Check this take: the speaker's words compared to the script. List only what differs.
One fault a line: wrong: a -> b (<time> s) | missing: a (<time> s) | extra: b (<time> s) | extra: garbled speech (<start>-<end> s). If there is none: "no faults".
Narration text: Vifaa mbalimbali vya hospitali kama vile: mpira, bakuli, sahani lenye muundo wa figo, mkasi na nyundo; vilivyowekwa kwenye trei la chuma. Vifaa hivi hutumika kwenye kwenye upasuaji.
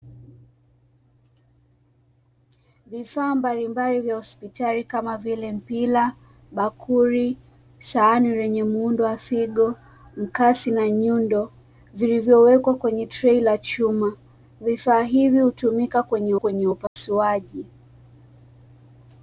no faults